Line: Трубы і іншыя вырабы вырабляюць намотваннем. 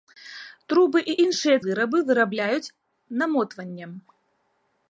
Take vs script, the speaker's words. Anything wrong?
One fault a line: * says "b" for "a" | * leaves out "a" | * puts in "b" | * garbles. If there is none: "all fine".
all fine